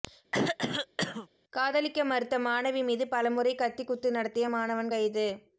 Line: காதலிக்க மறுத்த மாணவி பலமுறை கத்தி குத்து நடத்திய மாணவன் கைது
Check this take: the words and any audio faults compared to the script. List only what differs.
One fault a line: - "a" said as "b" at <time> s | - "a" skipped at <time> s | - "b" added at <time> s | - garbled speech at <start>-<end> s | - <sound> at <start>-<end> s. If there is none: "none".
- throat clearing at 0.3-1.3 s
- "மீது" added at 2.8 s